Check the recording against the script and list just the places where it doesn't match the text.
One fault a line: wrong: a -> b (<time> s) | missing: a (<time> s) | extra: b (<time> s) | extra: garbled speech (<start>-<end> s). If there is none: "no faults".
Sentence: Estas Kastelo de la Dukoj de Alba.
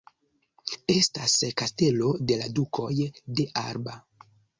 no faults